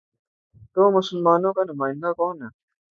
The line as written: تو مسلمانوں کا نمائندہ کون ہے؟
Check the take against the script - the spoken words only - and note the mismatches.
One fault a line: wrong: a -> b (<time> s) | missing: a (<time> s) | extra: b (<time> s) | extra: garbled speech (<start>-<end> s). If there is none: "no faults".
no faults